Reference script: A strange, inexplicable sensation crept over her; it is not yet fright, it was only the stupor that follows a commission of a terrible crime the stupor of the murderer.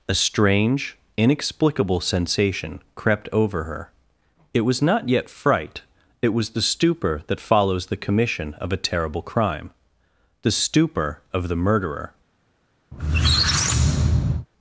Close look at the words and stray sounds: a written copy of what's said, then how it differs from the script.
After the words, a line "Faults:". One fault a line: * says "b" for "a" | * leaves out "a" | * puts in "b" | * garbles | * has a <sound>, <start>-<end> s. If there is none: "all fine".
A strange, inexplicable sensation crept over her; it was not yet fright, it was the stupor that follows the commission of a terrible crime the stupor of the murderer.
Faults:
* says "was" for "is"
* leaves out "only"
* says "the" for "a"
* has a squeak, 12.9-14.5 s